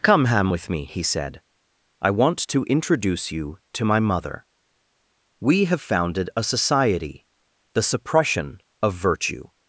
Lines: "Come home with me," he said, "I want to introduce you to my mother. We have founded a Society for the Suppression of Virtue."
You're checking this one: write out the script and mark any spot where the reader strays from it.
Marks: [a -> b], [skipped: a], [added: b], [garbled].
"Come [home -> ham] with me," he said, "I want to introduce you to my mother. We have founded a Society [skipped: for] the Suppression of Virtue."